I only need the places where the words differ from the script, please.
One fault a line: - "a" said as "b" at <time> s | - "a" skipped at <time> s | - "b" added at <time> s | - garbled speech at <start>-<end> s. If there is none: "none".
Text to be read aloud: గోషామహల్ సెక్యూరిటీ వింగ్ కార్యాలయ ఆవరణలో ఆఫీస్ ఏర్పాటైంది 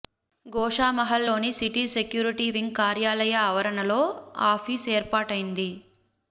- "లోని సిటీ" added at 1.2 s